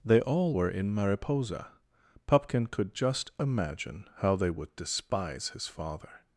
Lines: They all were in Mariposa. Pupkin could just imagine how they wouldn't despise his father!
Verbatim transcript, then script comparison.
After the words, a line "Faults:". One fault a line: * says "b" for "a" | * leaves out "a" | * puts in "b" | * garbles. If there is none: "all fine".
They all were in Mariposa. Pupkin could just imagine how they would despise his father!
Faults:
* says "would" for "wouldn't"